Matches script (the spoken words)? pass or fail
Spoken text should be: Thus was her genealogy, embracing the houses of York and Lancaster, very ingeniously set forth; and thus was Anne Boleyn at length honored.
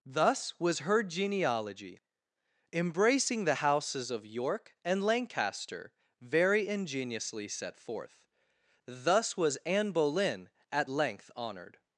fail